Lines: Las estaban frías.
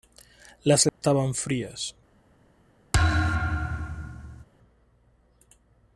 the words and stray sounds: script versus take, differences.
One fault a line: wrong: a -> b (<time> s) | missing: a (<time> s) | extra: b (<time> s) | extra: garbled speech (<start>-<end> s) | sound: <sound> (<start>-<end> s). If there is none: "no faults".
sound: dropout (0.9-1.0 s)
sound: thud (2.9-4.4 s)